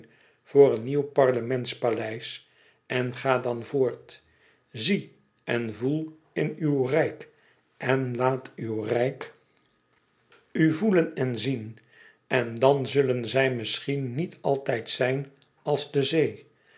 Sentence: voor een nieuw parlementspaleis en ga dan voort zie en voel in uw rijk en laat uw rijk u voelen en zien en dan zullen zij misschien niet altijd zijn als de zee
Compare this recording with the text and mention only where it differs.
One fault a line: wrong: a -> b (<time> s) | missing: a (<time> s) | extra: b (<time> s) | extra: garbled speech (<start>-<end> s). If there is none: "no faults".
no faults